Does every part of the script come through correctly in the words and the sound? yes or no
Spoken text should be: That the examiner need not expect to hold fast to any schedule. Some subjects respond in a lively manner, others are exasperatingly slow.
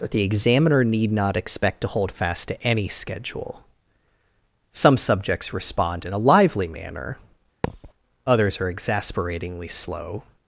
no